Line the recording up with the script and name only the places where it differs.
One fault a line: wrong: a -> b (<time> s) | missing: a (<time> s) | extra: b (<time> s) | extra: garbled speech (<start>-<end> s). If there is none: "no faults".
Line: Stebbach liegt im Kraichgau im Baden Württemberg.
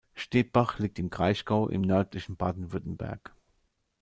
extra: nördlichen (1.8 s)